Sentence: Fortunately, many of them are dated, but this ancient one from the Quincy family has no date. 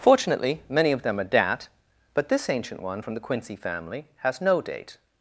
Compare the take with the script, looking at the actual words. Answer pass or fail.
fail